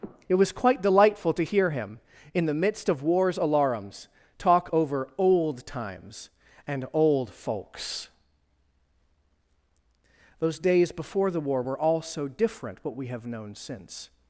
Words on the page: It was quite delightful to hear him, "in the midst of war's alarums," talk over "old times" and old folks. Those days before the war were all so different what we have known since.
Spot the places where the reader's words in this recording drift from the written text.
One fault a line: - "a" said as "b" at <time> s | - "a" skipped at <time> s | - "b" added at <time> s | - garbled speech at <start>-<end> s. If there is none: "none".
none